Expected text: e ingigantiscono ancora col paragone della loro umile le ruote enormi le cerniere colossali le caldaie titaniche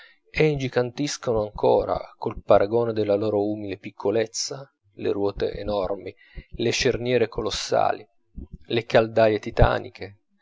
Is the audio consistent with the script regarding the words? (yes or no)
no